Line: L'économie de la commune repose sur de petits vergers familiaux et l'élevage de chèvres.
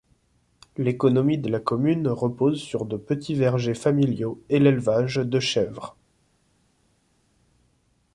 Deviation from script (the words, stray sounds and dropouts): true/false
false